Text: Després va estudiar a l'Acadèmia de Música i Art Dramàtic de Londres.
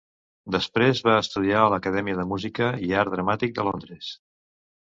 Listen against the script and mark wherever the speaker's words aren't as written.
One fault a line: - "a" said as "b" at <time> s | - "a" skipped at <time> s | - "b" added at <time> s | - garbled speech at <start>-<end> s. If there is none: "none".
none